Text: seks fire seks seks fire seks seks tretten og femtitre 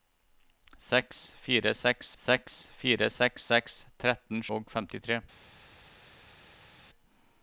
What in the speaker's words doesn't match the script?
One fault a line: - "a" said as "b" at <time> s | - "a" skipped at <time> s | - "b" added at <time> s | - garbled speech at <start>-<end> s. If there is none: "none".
none